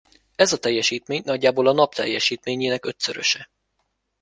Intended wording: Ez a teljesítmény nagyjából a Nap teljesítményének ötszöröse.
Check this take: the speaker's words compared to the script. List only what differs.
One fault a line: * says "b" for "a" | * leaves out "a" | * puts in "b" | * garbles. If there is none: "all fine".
all fine